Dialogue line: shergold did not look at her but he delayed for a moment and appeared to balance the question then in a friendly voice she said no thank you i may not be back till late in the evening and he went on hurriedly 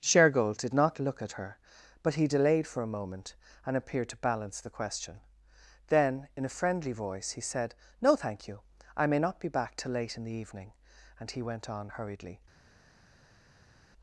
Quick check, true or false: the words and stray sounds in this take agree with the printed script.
false